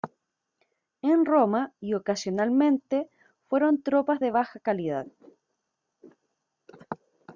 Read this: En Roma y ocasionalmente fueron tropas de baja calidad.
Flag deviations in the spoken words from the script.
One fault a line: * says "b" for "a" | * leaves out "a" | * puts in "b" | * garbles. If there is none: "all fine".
all fine